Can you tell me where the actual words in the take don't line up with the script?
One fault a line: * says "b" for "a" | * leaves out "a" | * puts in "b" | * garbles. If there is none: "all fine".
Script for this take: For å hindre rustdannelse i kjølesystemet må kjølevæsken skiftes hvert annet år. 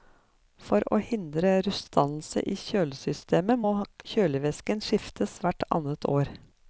all fine